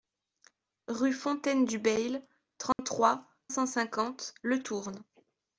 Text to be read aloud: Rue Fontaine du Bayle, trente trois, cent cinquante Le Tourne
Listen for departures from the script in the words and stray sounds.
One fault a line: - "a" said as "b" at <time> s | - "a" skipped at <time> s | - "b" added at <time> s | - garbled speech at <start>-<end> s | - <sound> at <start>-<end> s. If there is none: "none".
- dropout at 2.7-2.8 s